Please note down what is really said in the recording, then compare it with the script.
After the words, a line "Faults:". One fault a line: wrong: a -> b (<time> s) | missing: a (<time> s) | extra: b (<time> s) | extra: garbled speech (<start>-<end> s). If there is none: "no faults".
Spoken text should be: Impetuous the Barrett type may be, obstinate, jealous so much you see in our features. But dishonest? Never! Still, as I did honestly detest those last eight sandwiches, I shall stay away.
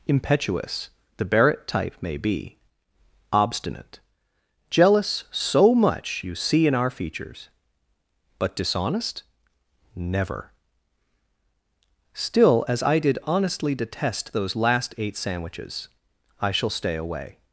Impetuous the Barrett type may be, obstinate, jealous so much you see in our features. But dishonest? Never! Still, as I did honestly detest those last eight sandwiches, I shall stay away.
Faults:
no faults